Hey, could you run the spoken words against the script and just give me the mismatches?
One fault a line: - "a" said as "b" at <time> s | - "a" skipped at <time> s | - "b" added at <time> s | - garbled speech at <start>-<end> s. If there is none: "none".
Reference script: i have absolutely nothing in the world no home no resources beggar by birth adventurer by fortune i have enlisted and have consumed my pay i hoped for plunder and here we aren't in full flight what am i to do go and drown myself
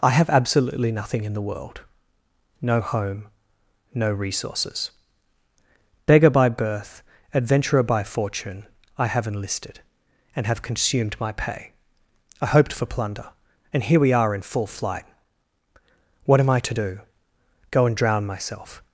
- "aren't" said as "are" at 14.1 s